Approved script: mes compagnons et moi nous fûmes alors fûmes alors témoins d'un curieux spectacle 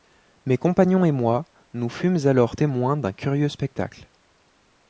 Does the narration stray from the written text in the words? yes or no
yes